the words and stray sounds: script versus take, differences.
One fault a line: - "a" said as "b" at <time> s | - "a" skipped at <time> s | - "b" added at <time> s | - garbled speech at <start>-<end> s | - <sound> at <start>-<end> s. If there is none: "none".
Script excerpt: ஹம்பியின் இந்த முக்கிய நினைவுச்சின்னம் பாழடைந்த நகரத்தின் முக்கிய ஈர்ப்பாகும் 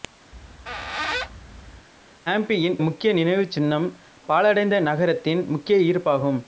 - squeak at 0.3-1.9 s
- "இந்த" skipped at 2.8 s